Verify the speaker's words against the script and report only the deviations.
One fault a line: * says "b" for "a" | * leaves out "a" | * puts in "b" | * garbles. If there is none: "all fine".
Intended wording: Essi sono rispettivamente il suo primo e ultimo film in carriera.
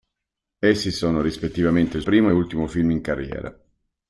* leaves out "suo"